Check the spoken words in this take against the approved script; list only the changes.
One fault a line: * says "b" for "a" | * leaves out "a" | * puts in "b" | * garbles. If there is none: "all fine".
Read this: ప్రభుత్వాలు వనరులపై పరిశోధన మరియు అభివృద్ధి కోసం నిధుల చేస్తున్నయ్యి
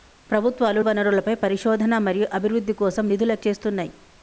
all fine